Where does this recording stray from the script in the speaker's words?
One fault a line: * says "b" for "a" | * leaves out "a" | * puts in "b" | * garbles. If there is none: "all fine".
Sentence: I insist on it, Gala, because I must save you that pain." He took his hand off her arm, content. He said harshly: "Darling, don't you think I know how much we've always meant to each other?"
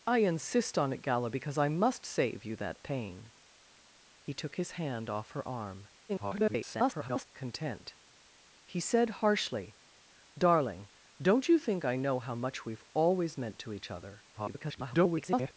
* garbles
* garbles